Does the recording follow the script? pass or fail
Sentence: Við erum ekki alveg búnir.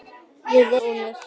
fail